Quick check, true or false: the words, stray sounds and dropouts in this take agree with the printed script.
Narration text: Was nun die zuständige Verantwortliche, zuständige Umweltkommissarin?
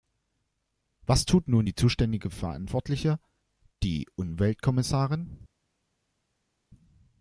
false